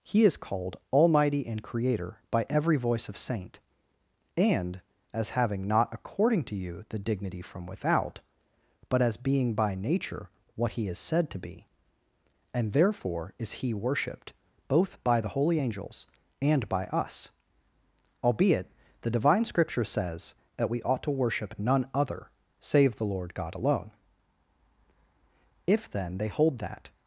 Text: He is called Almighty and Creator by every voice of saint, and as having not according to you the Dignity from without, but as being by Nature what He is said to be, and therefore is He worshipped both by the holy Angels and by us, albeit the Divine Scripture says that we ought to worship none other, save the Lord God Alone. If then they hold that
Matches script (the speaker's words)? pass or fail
pass